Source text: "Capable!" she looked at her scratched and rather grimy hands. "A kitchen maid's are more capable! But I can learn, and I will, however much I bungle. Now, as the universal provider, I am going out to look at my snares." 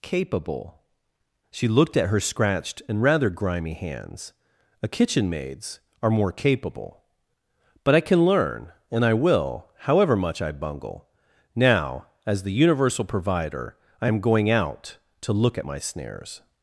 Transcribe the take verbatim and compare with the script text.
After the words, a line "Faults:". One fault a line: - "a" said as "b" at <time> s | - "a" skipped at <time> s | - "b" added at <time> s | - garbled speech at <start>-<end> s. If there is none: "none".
"Capable!" she looked at her scratched and rather grimy hands. "A kitchen maid's are more capable! But I can learn, and I will, however much I bungle. Now, as the universal provider, I am going out to look at my snares."
Faults:
none